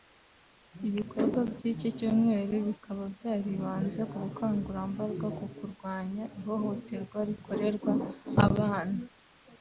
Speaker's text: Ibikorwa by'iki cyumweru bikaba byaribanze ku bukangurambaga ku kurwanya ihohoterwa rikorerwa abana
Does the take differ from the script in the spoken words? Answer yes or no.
no